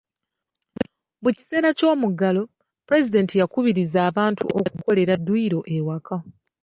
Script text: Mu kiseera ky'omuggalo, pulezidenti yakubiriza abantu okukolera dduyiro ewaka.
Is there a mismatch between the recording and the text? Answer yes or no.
no